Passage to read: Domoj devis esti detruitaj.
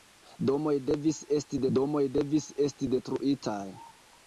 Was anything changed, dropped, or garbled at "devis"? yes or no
no